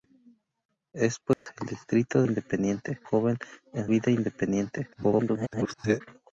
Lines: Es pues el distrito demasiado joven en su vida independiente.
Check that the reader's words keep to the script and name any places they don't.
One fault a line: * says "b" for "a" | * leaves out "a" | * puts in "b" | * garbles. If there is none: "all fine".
* says "independiente" for "demasiado"
* leaves out "su"
* garbles